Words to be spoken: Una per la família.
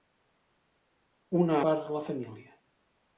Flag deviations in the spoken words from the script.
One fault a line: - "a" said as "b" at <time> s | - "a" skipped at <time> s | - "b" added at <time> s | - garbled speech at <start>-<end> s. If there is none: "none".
none